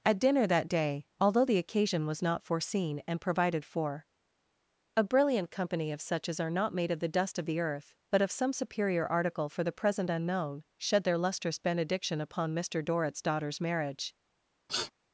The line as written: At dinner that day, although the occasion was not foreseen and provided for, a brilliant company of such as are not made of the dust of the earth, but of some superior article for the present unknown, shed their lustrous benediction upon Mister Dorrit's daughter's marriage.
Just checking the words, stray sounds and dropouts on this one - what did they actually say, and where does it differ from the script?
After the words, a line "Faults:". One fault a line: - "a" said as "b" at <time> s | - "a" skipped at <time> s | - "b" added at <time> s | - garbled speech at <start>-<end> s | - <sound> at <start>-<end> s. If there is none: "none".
At dinner that day, although the occasion was not foreseen and provided for, a brilliant company of such as are not made of the dust of the earth, but of some superior article for the present unknown, shed their lustrous benediction upon Mister Dorrit's daughter's marriage.
Faults:
- sniff at 14.7-14.9 s